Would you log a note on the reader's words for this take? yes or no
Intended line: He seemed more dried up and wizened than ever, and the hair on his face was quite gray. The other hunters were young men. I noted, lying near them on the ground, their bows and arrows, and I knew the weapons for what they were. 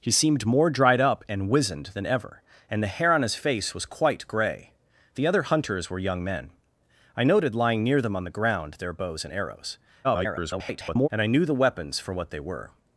yes